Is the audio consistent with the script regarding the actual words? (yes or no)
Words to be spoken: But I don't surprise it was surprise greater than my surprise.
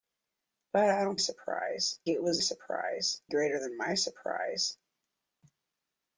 yes